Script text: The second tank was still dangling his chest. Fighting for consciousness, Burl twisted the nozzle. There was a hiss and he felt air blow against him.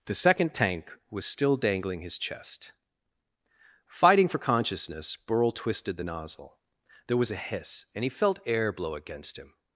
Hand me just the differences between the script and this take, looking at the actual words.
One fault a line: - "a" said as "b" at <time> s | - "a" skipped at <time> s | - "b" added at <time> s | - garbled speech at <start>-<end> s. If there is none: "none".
none